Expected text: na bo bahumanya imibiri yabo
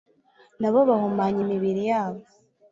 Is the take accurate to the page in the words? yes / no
yes